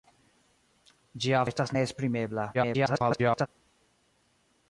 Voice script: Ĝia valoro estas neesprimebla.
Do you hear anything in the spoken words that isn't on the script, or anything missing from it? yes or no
yes